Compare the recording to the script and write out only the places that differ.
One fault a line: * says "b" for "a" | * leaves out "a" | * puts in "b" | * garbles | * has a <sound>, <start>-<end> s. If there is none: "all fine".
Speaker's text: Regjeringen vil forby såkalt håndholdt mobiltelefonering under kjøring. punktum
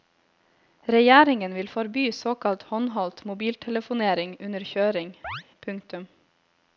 * has a chirp, 5.2-5.4 s